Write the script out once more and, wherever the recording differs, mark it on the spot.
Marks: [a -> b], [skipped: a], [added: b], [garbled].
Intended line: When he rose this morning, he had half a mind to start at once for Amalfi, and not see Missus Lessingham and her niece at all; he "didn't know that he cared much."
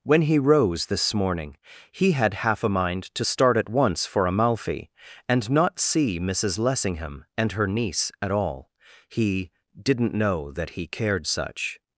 When he rose this morning, he had half a mind to start at once for Amalfi, and not see Missus Lessingham and her niece at all; he "didn't know that he cared [much." -> such]